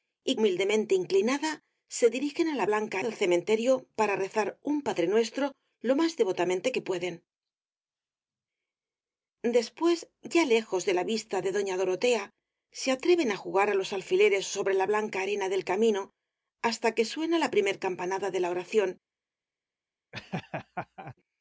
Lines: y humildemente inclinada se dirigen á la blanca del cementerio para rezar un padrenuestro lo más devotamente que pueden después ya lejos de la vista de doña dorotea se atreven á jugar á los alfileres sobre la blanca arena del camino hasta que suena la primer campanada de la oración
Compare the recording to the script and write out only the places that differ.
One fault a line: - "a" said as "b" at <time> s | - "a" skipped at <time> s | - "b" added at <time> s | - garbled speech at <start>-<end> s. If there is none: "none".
none